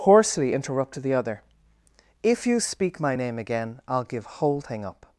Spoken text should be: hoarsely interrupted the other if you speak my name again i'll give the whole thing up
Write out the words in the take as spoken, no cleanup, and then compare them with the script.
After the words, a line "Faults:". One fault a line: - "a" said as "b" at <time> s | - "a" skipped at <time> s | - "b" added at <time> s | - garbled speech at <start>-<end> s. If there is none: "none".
hoarsely interrupted the other if you speak my name again i'll give whole thing up
Faults:
- "the" skipped at 4.3 s